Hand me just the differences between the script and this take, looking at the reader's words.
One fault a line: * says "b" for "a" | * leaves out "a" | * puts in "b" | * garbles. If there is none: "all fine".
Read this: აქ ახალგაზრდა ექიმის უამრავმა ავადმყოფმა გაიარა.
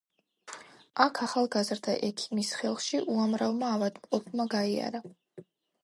* puts in "ხელში"